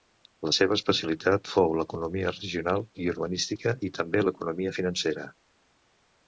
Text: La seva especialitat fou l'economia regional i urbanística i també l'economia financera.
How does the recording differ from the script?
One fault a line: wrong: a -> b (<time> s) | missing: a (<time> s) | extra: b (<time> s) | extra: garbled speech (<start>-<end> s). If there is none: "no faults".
no faults